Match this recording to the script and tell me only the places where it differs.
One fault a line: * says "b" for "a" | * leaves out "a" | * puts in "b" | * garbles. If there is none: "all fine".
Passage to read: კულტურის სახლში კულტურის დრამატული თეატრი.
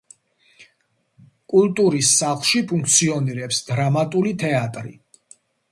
* says "ფუნქციონირებს" for "კულტურის"